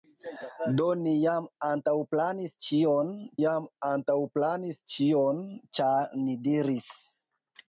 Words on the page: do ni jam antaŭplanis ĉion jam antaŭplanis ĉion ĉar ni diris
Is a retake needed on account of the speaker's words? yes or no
no